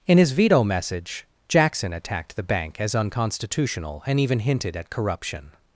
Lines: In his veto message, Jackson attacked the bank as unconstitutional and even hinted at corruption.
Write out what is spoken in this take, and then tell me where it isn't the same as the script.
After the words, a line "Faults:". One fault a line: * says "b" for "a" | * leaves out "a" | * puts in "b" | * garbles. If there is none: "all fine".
In his veto message, Jackson attacked the bank as unconstitutional and even hinted at corruption.
Faults:
all fine